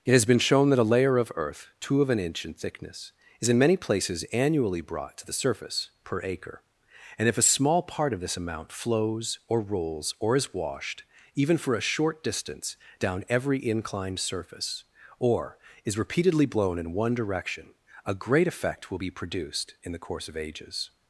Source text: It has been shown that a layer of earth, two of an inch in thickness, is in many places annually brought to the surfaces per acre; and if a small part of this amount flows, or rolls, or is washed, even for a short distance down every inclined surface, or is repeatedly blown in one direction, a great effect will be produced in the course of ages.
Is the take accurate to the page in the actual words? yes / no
no